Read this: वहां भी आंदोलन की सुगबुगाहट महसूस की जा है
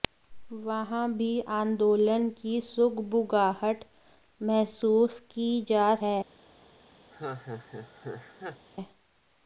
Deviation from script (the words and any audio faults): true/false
true